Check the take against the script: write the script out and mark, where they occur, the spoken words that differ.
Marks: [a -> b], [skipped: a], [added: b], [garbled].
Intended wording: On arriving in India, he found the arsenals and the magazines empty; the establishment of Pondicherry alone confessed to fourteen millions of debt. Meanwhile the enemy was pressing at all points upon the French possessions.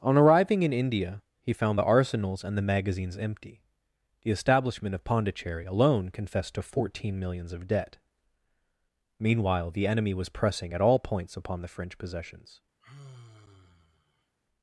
On arriving in India, he found the arsenals and the magazines empty; the establishment of Pondicherry alone confessed to fourteen millions of debt. Meanwhile the enemy was pressing at all points upon the French possessions.